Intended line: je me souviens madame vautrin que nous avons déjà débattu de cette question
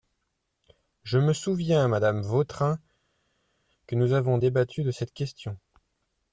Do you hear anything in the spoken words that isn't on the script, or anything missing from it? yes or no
yes